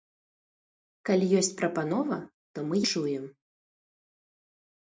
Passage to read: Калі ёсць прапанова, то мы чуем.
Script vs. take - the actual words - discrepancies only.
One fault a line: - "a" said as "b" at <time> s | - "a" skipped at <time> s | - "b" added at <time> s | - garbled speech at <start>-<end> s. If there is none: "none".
none